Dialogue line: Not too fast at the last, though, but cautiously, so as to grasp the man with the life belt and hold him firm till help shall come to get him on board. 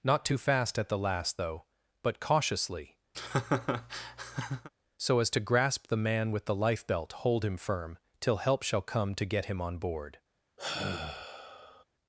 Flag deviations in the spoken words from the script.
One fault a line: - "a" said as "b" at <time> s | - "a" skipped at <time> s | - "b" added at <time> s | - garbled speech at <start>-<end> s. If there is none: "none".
- "and" skipped at 7.1 s